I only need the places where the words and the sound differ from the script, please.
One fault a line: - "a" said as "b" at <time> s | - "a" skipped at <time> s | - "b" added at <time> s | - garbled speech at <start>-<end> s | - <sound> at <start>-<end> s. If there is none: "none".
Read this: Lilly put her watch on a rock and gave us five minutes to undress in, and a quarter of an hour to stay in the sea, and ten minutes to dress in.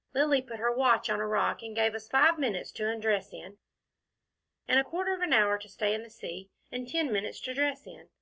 none